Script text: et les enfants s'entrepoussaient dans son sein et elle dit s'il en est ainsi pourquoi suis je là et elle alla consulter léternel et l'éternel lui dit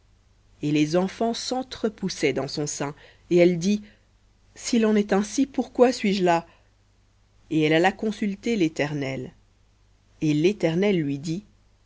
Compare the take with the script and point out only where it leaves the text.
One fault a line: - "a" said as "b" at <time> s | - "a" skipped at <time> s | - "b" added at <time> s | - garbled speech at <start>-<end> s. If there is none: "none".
none